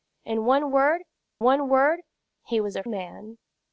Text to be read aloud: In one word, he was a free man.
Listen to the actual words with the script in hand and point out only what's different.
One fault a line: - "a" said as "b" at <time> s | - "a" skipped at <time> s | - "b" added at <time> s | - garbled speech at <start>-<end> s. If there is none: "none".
- "one word" added at 1.4 s
- "free" skipped at 2.8 s